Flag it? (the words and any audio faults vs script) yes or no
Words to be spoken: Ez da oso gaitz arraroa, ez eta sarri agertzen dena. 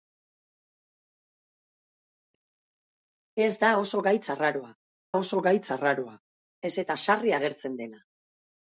yes